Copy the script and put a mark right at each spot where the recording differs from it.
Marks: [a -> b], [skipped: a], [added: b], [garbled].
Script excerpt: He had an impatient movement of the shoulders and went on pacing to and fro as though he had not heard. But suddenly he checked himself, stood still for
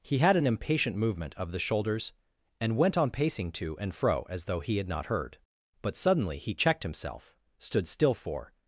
He had an impatient movement of the shoulders and went on pacing to and fro as though he had not heard. But suddenly he checked himself, stood still for